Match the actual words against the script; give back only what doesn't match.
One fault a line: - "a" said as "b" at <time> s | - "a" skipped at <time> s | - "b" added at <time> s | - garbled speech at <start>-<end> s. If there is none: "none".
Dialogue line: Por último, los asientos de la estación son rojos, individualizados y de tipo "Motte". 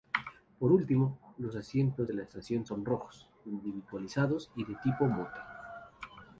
none